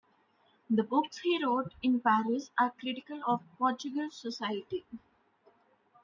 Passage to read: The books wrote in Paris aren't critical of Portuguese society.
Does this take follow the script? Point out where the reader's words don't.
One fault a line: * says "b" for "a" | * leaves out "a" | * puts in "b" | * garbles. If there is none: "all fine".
* puts in "he"
* says "are" for "aren't"